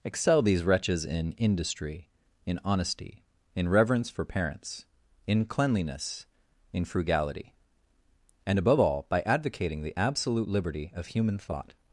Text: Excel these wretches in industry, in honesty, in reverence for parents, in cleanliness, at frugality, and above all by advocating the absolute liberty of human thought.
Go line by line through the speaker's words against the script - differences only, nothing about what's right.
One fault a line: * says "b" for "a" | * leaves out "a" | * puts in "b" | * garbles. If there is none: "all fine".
* says "in" for "at"